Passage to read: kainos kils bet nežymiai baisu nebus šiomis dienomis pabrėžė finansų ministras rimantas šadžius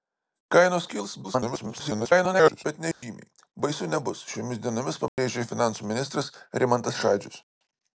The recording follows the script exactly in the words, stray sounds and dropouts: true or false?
false